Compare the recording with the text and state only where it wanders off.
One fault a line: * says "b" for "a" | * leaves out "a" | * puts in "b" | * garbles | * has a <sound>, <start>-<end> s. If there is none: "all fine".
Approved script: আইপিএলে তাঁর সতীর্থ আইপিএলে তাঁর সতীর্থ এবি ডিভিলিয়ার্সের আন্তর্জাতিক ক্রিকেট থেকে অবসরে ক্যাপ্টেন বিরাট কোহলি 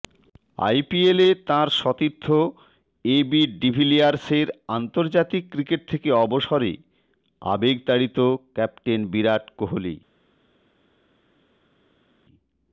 * leaves out "আইপিএলে তাঁর সতীর্থ"
* puts in "আবেগতাড়িত"